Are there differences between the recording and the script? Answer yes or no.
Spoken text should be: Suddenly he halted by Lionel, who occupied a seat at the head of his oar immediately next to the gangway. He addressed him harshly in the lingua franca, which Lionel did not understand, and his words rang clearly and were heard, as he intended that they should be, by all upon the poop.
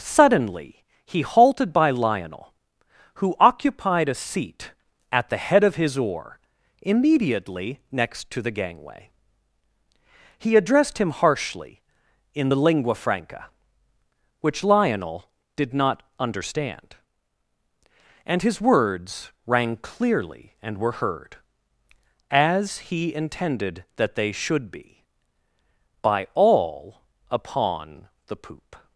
no